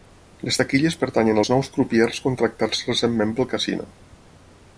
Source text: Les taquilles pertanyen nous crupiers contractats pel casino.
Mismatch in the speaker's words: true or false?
true